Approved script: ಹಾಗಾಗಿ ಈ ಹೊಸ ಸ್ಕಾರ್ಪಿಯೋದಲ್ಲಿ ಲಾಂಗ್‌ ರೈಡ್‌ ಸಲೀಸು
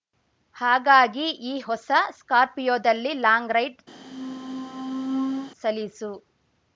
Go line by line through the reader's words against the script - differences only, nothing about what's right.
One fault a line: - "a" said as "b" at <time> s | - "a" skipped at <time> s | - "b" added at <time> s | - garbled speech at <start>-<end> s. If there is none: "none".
none